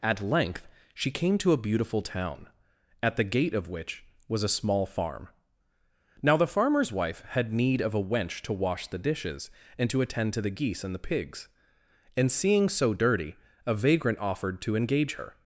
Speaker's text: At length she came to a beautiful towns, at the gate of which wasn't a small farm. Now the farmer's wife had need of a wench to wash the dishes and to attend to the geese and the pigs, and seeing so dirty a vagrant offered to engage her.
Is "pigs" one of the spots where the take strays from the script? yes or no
no